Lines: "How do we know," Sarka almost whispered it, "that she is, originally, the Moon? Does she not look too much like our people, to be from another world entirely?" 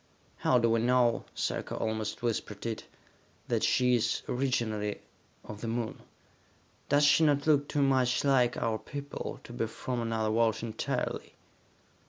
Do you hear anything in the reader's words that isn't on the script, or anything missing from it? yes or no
yes